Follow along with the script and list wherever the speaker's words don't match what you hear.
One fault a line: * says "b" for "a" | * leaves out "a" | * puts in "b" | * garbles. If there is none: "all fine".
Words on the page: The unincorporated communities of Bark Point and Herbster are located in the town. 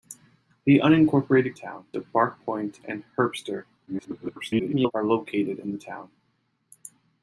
* says "town" for "communities"
* garbles